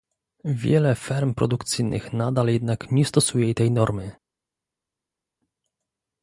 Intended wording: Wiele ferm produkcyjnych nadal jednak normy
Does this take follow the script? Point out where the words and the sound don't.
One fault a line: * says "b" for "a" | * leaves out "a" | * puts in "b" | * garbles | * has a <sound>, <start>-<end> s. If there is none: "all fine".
* puts in "nie stosuje tej"